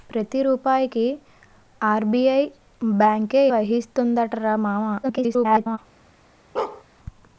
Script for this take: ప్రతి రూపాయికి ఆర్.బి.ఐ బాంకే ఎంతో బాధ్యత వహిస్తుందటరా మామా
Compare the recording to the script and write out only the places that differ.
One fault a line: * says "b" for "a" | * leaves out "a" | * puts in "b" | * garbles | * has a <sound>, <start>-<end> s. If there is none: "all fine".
* leaves out "ఎంతో బాధ్యత"
* garbles
* has a bark, 6.6-6.8 s